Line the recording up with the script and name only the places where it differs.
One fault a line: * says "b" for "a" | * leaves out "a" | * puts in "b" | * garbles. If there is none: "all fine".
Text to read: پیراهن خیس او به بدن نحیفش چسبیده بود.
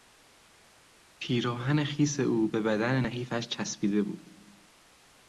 all fine